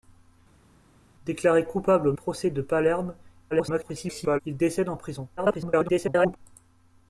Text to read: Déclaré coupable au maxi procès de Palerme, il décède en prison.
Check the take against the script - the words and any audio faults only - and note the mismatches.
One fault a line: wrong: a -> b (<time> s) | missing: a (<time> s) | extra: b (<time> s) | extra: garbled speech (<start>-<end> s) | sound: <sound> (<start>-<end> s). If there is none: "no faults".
missing: maxi (2.1 s)
extra: garbled speech (3.5-4.4 s)
extra: garbled speech (5.4-6.4 s)